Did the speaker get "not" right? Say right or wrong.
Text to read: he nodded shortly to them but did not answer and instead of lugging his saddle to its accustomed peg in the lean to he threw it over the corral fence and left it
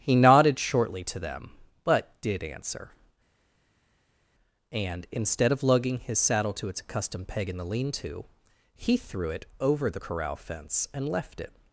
wrong